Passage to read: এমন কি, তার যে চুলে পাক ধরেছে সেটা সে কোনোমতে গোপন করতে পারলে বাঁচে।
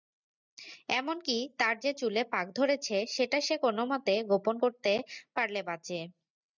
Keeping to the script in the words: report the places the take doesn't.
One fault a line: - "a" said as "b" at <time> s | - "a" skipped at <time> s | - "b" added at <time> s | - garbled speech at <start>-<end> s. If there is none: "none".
none